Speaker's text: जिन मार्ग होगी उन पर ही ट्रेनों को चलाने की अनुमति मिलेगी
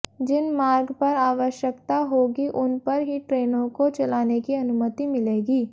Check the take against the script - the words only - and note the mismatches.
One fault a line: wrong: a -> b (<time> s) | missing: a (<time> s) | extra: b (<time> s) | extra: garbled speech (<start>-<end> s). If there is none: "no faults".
extra: पर आवश्यकता (1.0 s)